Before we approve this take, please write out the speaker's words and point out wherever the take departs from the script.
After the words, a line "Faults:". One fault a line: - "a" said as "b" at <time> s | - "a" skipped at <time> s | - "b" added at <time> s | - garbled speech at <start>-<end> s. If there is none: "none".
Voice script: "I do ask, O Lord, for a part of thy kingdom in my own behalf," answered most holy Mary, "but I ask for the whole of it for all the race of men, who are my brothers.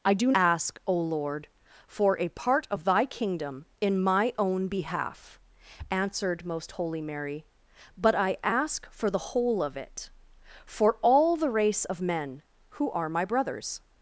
"I do ask, O Lord, for a part of thy kingdom in my own behalf," answered most holy Mary, "but I ask for the whole of it for all the race of men, who are my brothers.
Faults:
none